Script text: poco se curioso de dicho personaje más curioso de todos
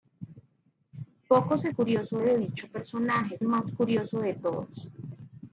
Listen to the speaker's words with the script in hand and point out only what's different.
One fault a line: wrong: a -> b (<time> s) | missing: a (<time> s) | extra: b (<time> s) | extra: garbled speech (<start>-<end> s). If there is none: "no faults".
no faults